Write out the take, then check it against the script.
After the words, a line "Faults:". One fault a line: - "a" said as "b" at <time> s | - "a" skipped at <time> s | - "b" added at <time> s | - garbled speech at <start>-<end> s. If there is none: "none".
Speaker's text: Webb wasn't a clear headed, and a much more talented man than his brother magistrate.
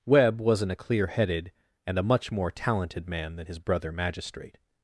Webb wasn't a clear headed, and a much more talented man than his brother magistrate.
Faults:
none